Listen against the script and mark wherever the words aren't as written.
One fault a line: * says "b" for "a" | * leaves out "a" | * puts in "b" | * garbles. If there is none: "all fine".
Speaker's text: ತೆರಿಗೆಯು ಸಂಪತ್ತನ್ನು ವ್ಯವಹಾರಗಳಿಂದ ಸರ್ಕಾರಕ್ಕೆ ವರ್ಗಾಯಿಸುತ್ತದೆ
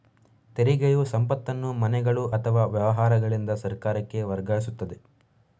* puts in "ಮನೆಗಳು ಅಥವಾ"